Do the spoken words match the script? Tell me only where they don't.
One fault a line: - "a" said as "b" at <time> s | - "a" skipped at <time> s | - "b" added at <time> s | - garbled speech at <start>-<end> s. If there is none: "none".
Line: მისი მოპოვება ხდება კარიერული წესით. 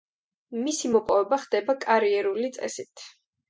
none